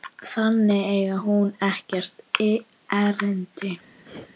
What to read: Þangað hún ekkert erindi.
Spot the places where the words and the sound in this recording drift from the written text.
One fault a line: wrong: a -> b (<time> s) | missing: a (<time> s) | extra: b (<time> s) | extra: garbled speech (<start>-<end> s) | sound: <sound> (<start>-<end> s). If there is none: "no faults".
extra: eigi (0.9 s)
sound: throat clearing (4.0-4.3 s)